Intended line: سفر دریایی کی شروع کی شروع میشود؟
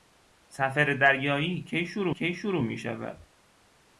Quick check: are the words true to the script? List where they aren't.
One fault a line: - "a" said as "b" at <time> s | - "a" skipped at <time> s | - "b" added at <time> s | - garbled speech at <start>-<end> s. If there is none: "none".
none